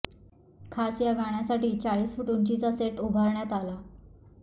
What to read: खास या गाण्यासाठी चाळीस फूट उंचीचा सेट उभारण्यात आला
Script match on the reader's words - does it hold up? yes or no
yes